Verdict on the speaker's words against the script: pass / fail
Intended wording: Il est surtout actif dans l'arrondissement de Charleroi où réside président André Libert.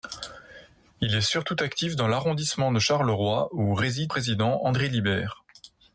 pass